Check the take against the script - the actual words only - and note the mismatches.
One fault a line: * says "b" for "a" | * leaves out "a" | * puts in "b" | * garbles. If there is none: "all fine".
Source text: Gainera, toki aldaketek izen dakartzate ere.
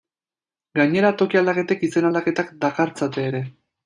* puts in "aldaketak"